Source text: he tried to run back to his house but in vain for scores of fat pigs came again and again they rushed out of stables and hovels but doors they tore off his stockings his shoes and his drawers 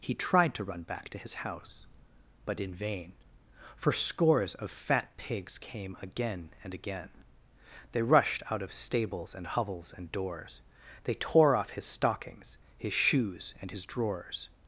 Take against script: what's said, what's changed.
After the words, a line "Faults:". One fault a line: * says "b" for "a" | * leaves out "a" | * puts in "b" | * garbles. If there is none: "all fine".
he tried to run back to his house but in vain for scores of fat pigs came again and again they rushed out of stables and hovels and doors they tore off his stockings his shoes and his drawers
Faults:
* says "and" for "but"